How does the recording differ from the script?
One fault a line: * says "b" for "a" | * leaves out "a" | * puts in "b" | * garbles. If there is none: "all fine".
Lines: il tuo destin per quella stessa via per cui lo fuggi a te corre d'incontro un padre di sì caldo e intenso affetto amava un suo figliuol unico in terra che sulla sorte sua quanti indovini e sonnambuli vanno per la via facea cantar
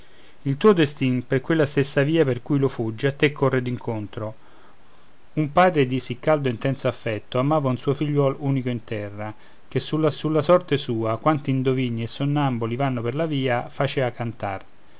* puts in "sulla"